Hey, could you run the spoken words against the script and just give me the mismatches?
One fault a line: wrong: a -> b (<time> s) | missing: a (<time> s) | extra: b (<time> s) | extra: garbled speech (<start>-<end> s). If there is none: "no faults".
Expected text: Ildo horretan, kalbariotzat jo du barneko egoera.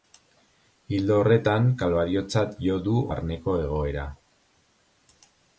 no faults